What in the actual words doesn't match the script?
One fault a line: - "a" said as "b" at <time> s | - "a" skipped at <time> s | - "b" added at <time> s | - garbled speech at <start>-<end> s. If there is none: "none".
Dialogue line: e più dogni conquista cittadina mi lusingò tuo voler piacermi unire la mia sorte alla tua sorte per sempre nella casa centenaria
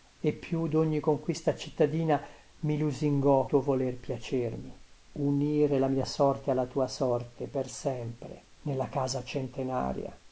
none